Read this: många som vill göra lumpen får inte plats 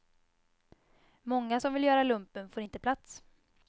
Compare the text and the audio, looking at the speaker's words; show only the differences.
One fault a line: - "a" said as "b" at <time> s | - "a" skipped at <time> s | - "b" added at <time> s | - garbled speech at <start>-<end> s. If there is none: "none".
none